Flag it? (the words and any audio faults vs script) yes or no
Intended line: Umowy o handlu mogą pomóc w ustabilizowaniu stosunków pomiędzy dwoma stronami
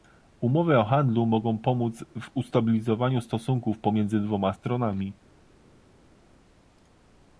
no